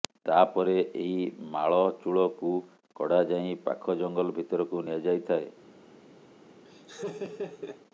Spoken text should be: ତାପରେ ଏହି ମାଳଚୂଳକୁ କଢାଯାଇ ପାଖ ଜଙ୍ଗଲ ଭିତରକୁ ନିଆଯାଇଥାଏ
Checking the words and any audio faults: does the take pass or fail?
fail